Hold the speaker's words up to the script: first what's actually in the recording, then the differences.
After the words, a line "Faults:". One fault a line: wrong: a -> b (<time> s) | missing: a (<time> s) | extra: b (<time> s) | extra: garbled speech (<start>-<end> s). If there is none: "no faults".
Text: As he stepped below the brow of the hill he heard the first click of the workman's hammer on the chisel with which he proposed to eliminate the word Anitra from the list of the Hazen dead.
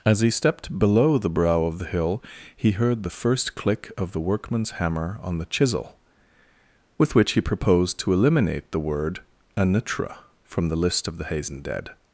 As he stepped below the brow of the hill he heard the first click of the workman's hammer on the chisel with which he proposed to eliminate the word Anitra from the list of the Hazen dead.
Faults:
no faults